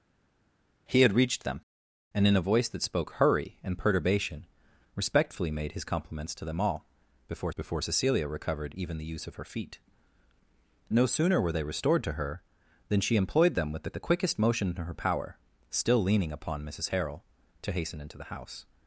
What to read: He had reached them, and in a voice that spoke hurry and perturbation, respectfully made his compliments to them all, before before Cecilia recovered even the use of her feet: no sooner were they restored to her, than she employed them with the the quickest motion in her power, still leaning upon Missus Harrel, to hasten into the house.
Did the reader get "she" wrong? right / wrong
right